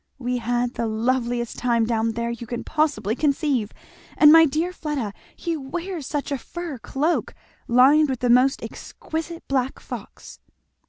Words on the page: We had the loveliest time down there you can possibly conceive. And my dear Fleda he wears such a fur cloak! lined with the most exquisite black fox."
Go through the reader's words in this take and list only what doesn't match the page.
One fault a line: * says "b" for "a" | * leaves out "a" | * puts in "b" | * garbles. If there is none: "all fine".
all fine